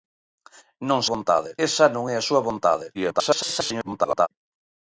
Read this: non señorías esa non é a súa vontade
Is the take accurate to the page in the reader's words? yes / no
no